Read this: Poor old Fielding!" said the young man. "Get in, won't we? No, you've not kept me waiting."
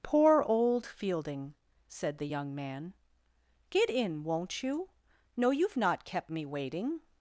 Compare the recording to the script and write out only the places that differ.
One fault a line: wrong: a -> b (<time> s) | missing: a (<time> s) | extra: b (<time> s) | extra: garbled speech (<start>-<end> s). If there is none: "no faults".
wrong: we -> you (4.6 s)